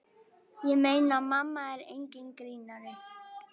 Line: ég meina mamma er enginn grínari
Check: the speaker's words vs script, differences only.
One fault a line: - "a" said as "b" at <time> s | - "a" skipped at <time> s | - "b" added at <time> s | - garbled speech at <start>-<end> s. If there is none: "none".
none